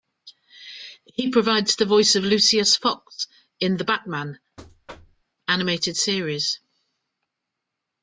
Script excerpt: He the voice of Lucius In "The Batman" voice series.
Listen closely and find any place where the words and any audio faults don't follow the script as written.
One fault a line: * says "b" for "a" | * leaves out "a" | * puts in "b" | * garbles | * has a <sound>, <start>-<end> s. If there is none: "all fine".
* puts in "provides"
* puts in "Fox"
* has a thud, 4.6-5.2 s
* says "animated" for "voice"